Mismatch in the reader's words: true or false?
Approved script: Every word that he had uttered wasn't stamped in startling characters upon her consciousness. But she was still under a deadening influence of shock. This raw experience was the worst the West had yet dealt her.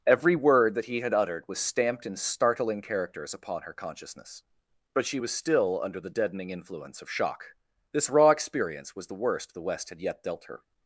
true